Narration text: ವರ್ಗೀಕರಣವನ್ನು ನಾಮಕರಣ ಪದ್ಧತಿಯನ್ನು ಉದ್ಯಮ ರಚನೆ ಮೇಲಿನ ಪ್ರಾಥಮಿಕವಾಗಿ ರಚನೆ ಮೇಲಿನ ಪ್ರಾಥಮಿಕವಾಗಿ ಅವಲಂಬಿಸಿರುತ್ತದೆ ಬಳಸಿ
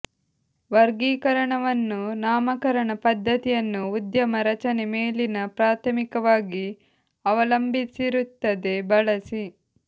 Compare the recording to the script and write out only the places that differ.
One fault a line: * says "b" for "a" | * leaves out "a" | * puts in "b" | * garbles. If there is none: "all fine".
* leaves out "ರಚನೆ ಮೇಲಿನ ಪ್ರಾಥಮಿಕವಾಗಿ"